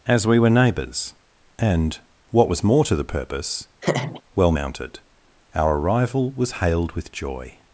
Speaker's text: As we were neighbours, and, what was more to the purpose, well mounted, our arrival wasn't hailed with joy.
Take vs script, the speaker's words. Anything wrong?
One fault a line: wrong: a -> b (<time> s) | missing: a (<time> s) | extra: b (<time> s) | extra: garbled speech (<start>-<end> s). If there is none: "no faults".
wrong: wasn't -> was (6.3 s)